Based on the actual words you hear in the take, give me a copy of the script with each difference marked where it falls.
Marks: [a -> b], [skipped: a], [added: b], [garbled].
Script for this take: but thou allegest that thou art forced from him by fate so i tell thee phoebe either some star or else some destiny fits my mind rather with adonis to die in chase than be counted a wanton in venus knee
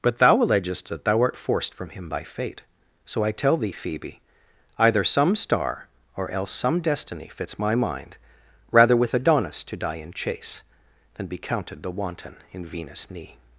but thou allegest that thou art forced from him by fate so i tell thee phoebe either some star or else some destiny fits my mind rather with adonis to die in chase than be counted [a -> the] wanton in venus knee